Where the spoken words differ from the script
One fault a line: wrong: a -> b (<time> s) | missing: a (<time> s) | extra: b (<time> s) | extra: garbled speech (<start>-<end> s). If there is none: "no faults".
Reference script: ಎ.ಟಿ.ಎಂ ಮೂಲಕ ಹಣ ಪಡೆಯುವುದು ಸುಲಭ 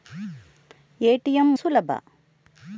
missing: ಮೂಲಕ ಹಣ ಪಡೆಯುವುದು (1.5 s)